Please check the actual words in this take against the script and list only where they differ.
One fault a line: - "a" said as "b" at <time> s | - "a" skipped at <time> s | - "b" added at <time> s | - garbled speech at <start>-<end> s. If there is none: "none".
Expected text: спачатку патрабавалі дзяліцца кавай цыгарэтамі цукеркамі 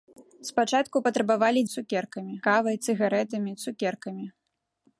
- "дзяліцца" said as "цукеркамі" at 1.7 s